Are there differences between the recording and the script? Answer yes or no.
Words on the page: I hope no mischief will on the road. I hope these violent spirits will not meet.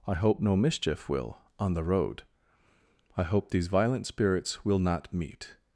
no